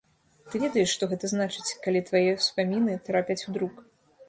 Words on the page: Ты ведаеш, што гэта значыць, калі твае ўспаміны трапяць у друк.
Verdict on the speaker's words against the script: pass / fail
pass